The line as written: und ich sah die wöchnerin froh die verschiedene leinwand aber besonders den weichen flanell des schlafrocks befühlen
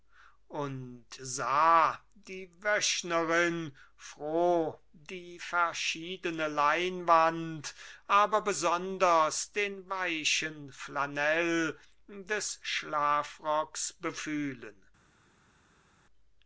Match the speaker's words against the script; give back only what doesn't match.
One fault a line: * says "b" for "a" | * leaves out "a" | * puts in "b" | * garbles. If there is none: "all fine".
* leaves out "ich"